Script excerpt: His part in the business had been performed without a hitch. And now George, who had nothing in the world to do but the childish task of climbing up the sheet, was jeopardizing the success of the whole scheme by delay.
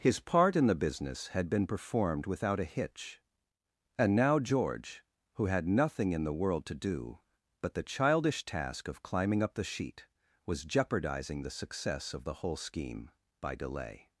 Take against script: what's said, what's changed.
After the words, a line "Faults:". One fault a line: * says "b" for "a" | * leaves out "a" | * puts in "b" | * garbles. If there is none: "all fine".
His part in the business had been performed without a hitch. And now George, who had nothing in the world to do but the childish task of climbing up the sheet, was jeopardizing the success of the whole scheme by delay.
Faults:
all fine